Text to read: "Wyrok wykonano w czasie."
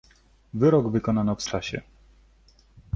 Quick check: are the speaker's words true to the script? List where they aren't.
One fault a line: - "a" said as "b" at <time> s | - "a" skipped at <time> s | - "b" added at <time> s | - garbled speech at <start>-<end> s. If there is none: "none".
none